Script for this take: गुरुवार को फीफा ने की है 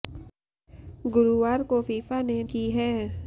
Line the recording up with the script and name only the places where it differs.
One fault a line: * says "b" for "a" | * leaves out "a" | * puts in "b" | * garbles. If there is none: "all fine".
all fine